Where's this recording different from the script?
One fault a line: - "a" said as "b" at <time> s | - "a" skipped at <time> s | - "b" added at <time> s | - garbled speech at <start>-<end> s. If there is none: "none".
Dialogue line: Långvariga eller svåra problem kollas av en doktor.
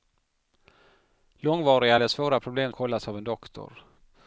none